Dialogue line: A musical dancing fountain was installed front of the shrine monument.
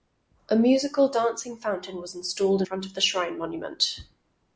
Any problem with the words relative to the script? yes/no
no